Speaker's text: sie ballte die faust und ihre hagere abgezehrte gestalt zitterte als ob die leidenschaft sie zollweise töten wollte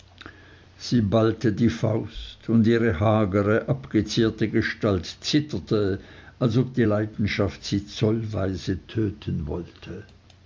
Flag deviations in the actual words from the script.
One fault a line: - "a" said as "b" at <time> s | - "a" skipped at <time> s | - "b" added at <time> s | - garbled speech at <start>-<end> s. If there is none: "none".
none